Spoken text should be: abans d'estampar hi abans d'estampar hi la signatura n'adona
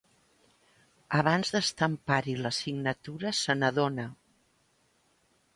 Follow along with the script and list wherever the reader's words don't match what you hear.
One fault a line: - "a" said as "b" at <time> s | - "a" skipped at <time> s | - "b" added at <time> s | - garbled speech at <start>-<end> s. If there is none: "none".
- "abans d'estampar hi" skipped at 2.4 s
- "se" added at 3.4 s